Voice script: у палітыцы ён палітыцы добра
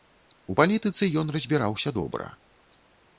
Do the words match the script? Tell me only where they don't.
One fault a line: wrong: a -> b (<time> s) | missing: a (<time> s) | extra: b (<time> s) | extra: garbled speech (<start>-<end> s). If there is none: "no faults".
wrong: палітыцы -> разбіраўся (1.4 s)